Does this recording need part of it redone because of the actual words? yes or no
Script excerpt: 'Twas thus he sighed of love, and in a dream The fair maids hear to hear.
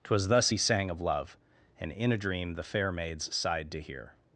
yes